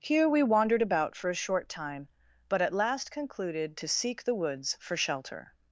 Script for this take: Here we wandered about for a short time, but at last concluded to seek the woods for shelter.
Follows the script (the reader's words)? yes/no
yes